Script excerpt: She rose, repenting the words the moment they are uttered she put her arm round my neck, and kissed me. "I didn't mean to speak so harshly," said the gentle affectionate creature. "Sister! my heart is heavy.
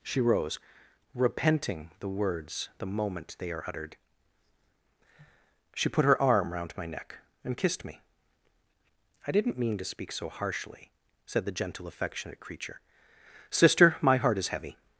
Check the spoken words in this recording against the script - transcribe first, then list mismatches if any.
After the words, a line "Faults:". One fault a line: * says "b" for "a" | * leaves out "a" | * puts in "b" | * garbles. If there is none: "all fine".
She rose, repenting the words the moment they are uttered she put her arm round my neck, and kissed me. "I didn't mean to speak so harshly," said the gentle affectionate creature. "Sister! my heart is heavy.
Faults:
all fine